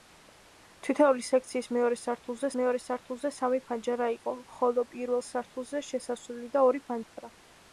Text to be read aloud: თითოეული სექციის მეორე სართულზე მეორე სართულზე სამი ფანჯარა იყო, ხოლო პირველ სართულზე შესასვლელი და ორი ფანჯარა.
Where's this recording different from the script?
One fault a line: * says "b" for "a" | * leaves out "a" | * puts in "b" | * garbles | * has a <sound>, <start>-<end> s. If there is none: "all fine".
* has a dropout, 7.0-7.2 s